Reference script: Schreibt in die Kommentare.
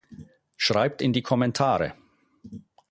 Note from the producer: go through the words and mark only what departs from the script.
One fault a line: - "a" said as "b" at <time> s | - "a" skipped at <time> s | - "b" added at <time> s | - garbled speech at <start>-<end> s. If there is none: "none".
none